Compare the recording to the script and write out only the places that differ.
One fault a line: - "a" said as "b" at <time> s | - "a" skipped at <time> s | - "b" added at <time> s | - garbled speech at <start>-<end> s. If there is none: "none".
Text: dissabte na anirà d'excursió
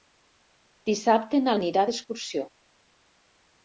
none